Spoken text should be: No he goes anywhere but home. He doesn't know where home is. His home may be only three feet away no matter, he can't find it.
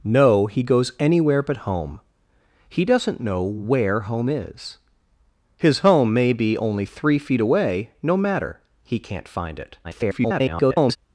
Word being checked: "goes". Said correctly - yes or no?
yes